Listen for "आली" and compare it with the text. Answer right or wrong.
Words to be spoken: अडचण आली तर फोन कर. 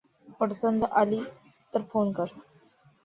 right